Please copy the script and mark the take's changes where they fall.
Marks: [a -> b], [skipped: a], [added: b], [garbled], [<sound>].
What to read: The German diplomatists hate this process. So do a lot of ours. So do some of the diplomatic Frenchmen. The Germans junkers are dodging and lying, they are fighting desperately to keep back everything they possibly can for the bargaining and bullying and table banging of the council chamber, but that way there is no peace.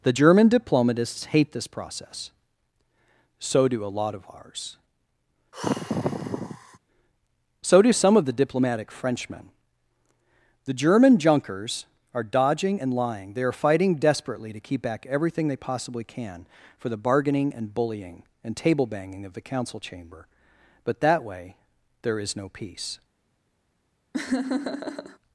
The German diplomatists hate this process. So do a lot of ours. [sigh] So do some of the diplomatic Frenchmen. The [Germans -> German] junkers are dodging and lying, they are fighting desperately to keep back everything they possibly can for the bargaining and bullying and table banging of the council chamber, but that way there is no peace. [laugh]